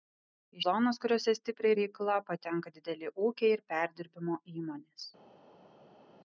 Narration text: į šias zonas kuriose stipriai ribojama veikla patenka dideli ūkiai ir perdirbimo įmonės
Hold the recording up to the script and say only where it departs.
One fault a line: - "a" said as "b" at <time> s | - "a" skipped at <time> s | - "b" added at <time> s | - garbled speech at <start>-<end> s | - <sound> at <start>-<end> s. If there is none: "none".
- "šias" skipped at 0.6 s
- "ribojama" skipped at 1.8 s